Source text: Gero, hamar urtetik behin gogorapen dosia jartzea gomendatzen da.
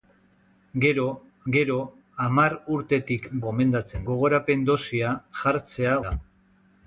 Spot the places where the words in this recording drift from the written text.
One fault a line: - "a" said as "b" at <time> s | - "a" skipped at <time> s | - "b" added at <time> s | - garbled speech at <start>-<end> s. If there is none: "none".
- "gero" added at 1.5 s
- "behin" said as "gomendatzen" at 3.5 s
- "gomendatzen" skipped at 5.9 s